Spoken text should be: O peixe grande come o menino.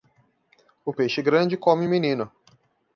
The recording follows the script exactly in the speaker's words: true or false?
true